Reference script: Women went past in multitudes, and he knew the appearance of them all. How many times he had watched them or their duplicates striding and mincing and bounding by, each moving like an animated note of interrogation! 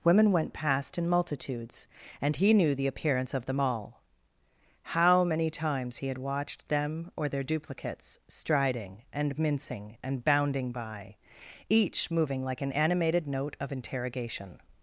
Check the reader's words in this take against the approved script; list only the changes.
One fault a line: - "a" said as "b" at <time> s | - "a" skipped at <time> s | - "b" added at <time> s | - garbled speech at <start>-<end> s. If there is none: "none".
none